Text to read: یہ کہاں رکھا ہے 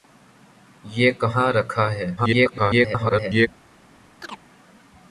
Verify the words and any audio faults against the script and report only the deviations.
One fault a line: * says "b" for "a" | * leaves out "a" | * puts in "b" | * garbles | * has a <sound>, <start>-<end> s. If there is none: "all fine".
* garbles
* has a chirp, 4.2-4.4 s